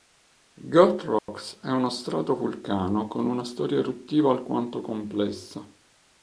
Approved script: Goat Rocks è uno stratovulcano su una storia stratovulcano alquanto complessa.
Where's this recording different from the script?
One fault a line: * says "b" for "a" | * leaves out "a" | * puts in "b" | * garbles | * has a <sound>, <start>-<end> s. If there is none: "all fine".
* has a dropout, 1.2-1.3 s
* says "con" for "su"
* says "eruttiva" for "stratovulcano"